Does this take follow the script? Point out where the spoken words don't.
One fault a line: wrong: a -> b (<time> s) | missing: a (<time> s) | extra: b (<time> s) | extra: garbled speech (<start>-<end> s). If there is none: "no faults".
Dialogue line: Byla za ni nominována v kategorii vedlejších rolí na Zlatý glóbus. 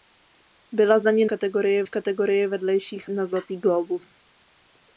wrong: nominována -> kategorii (1.2 s)
missing: rolí (3.1 s)